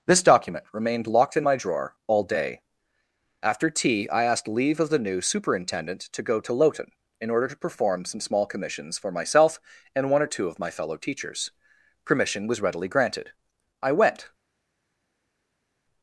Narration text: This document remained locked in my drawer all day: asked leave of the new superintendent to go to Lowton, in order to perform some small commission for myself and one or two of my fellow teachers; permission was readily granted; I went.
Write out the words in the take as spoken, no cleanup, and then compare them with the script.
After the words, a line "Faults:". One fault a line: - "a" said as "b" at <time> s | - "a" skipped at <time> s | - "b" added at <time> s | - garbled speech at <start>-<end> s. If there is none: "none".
This document remained locked in my drawer all day: after tea, I asked leave of the new superintendent to go to Lowton, in order to perform some small commissions for myself and one or two of my fellow teachers; permission was readily granted; I went.
Faults:
- "after tea I" added at 3.4 s
- "commission" said as "commissions" at 8.5 s